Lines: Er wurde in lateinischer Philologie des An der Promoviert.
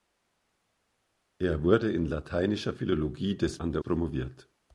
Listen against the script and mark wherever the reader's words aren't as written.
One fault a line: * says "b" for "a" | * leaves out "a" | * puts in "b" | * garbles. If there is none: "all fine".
all fine